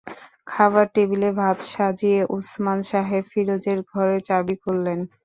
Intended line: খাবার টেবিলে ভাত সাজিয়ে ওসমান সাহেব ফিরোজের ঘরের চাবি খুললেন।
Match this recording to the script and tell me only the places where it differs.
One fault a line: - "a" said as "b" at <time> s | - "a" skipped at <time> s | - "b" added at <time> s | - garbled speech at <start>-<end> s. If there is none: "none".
none